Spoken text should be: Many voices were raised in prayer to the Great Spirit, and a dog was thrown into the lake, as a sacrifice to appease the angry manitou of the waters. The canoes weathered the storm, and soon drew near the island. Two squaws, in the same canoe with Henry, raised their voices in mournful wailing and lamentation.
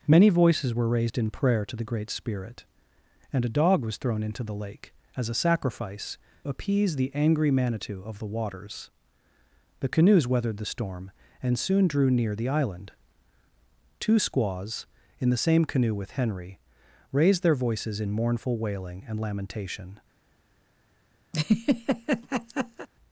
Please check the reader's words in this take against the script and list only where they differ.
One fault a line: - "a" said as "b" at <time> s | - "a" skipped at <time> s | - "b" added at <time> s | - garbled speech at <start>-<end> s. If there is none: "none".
- "to" skipped at 6.2 s